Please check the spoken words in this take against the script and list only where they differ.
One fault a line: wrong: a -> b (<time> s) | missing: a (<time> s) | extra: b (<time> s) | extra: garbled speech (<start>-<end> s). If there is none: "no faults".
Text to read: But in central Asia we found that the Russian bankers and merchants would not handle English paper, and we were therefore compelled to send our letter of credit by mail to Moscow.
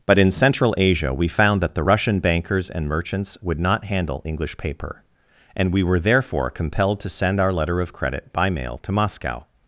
no faults